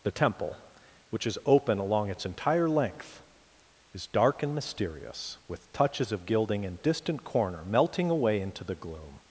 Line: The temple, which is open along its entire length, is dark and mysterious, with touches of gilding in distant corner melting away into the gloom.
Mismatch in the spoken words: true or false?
false